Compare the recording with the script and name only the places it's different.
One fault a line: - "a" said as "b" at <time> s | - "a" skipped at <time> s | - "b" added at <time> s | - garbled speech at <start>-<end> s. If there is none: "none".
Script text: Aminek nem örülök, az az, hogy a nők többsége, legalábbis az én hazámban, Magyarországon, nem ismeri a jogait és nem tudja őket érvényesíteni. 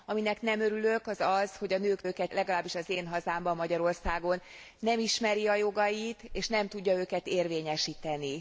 - "többsége" said as "őket" at 2.0 s